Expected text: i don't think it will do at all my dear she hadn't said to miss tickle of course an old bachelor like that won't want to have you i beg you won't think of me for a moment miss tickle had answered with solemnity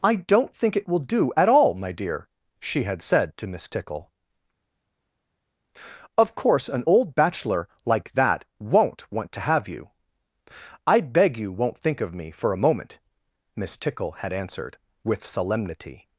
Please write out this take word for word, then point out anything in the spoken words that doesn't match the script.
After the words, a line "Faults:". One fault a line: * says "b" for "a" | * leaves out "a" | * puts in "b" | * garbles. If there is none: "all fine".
i don't think it will do at all my dear she had said to miss tickle of course an old bachelor like that won't want to have you i beg you won't think of me for a moment miss tickle had answered with solemnity
Faults:
* says "had" for "hadn't"